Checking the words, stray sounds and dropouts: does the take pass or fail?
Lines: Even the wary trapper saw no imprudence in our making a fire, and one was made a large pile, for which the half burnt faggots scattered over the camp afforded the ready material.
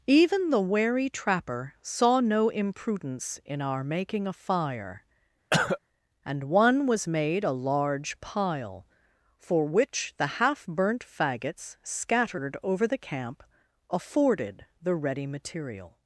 fail